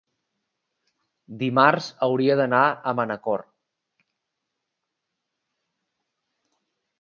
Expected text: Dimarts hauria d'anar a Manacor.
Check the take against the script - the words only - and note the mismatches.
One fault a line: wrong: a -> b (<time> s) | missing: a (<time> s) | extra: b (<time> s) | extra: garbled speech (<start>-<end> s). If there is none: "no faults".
no faults